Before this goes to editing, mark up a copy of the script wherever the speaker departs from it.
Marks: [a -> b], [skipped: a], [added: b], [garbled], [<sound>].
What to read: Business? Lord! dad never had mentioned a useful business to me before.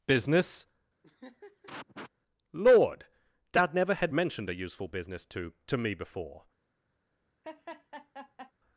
Business? [laugh] Lord! dad never had mentioned a useful business to [added: to] me before. [laugh]